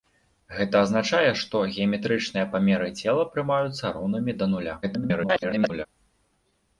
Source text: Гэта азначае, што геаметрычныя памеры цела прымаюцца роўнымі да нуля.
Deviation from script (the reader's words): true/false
true